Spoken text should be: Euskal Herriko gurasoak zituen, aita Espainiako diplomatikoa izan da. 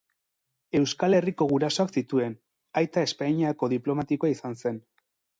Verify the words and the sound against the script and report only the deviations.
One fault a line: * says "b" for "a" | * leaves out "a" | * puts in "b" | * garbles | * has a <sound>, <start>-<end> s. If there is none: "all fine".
* says "zen" for "da"